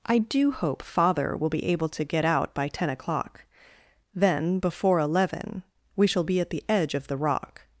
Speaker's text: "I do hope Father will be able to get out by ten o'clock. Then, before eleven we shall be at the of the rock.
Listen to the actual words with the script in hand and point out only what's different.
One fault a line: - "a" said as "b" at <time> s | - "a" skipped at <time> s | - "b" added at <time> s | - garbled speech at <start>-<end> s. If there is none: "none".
- "edge" added at 6.7 s